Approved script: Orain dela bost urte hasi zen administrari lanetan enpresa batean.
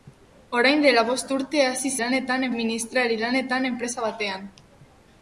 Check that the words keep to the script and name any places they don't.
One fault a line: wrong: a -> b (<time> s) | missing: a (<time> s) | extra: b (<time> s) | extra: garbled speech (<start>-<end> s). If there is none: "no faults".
wrong: zen -> lanetan (2.0 s)